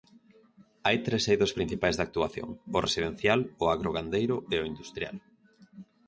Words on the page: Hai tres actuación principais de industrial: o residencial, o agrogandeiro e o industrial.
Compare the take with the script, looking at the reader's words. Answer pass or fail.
fail